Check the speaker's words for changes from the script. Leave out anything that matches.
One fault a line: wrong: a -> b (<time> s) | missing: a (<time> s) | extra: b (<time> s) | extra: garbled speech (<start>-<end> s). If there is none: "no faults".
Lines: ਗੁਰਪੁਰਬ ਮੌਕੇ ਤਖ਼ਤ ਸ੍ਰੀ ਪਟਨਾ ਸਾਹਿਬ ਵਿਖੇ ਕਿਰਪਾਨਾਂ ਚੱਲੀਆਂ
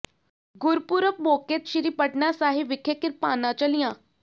missing: ਤਖ਼ਤ (1.6 s)